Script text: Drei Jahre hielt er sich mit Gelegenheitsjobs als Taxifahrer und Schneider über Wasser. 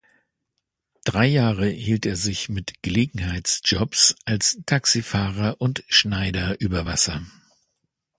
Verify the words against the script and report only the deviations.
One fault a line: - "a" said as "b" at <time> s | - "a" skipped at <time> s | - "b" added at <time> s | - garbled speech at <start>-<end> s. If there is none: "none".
none